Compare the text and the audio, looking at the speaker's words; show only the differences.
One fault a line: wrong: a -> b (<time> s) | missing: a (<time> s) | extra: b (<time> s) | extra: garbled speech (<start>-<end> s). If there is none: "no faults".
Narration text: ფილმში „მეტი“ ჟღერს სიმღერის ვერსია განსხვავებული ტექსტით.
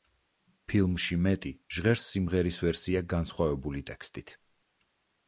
no faults